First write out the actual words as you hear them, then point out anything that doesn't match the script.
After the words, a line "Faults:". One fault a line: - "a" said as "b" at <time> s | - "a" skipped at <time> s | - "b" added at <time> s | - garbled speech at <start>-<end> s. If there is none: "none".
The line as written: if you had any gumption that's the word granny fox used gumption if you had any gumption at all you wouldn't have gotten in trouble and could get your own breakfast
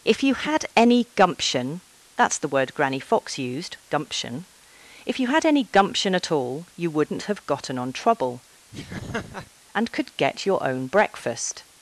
if you had any gumption that's the word granny fox used gumption if you had any gumption at all you wouldn't have gotten on trouble and could get your own breakfast
Faults:
- "in" said as "on" at 7.8 s